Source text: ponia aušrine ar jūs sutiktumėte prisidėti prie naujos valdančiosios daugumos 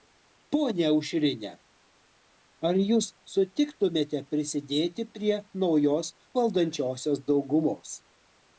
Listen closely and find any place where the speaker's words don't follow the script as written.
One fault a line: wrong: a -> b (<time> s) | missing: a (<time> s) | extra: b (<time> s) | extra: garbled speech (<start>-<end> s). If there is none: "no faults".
no faults